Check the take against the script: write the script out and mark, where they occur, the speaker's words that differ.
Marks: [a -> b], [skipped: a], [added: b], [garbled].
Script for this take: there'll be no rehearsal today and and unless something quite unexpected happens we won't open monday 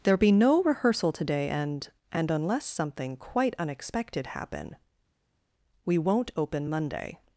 there'll be no rehearsal today and and unless something quite unexpected [happens -> happen] we won't open monday